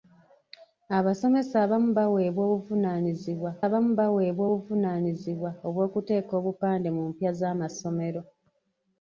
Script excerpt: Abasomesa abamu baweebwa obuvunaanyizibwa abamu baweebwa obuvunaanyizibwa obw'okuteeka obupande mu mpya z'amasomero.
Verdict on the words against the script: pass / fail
pass